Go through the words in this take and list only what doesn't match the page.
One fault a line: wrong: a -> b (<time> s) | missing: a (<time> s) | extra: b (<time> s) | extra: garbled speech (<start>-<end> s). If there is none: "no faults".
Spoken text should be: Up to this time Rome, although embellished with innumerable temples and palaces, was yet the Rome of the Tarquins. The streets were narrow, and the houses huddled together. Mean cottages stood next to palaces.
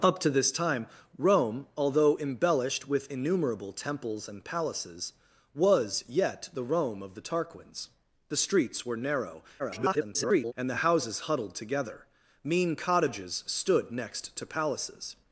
extra: garbled speech (9.6-10.5 s)